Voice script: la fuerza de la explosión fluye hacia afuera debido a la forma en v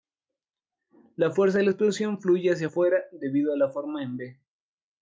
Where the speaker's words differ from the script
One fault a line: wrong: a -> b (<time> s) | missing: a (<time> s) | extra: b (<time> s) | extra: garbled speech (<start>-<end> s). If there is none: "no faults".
no faults